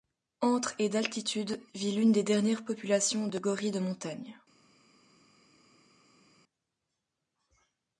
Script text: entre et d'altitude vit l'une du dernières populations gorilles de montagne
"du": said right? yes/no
no